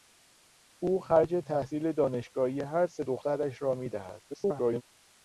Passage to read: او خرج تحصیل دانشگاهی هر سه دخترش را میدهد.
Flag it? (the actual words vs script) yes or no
yes